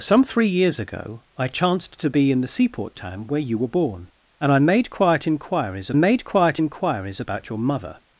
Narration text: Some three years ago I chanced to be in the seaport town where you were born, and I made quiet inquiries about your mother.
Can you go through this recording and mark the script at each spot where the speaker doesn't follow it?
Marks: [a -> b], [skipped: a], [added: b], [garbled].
Some three years ago I chanced to be in the seaport town where you were born, and I made quiet inquiries [added: made quiet inquiries] about your mother.